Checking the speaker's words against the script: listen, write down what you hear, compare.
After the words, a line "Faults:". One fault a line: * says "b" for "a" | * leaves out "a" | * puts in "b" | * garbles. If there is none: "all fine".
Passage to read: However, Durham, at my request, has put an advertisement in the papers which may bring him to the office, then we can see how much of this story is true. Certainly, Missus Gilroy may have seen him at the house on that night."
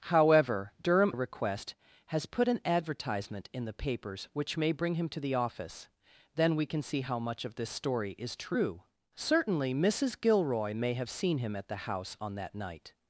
However, Durham, request, has put an advertisement in the papers which may bring him to the office, then we can see how much of this story is true. Certainly, Missus Gilroy may have seen him at the house on that night."
Faults:
* leaves out "at my"